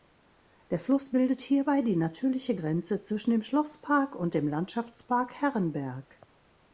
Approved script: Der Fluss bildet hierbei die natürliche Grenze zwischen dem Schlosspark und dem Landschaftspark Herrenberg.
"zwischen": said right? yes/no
yes